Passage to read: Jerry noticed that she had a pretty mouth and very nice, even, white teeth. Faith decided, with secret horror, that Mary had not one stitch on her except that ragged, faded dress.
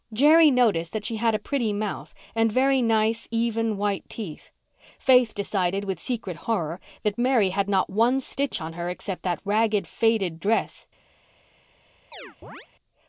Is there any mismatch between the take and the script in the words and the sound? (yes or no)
yes